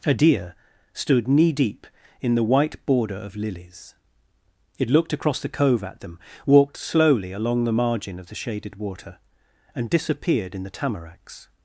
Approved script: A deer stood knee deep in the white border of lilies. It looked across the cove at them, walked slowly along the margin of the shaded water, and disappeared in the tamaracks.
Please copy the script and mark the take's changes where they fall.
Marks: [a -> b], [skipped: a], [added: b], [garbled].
A deer stood knee deep in the white border of lilies. It looked across the cove at them, walked slowly along the margin of the shaded water, and disappeared in the tamaracks.